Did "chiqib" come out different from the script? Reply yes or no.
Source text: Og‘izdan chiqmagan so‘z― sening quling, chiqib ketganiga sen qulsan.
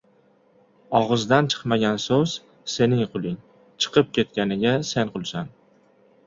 no